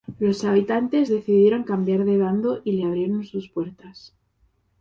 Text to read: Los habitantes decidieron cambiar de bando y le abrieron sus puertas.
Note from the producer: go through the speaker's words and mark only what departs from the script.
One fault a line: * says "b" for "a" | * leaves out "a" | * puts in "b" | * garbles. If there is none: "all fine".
all fine